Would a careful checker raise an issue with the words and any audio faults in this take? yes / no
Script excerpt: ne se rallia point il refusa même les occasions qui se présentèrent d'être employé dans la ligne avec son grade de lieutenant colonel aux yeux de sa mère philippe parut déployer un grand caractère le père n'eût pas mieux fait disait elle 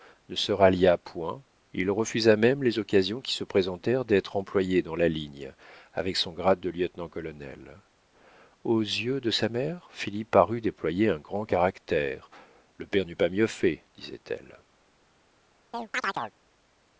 yes